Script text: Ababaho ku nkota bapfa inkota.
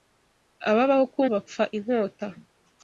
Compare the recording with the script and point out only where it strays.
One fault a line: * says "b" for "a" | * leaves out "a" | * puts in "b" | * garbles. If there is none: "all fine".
* leaves out "nkota"